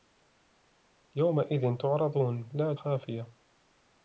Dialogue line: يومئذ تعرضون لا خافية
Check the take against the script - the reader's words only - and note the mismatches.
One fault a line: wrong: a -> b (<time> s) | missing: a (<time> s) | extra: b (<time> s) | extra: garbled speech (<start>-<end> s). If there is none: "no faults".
no faults